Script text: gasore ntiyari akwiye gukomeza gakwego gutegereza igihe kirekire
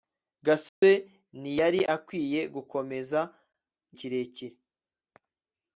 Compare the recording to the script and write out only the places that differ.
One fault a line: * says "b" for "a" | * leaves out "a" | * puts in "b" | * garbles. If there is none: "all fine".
* leaves out "gakwego gutegereza igihe"